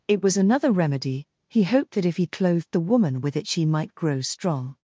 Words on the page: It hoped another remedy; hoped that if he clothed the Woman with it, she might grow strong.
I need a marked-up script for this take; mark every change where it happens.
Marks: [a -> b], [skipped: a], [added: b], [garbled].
It [hoped -> was] another remedy; [added: he] hoped that if he clothed the Woman with it, she might grow strong.